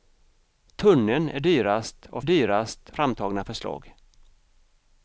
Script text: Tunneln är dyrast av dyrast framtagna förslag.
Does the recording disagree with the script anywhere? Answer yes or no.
no